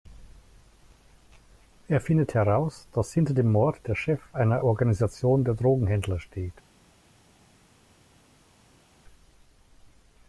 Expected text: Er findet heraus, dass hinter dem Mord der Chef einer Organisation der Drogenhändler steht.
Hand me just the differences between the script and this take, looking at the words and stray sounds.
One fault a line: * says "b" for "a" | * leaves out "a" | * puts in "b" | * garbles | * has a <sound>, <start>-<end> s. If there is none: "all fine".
all fine